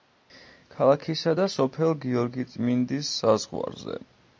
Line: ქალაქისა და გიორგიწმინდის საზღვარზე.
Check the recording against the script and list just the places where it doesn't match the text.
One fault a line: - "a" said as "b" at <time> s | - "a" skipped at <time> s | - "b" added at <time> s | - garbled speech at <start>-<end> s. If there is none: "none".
- "სოფელ" added at 1.5 s